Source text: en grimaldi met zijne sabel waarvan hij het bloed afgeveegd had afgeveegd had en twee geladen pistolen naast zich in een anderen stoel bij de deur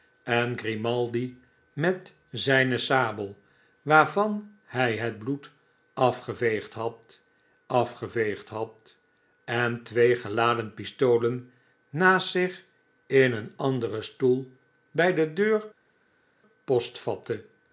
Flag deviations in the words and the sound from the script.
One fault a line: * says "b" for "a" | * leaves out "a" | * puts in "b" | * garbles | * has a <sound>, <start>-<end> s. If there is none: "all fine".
all fine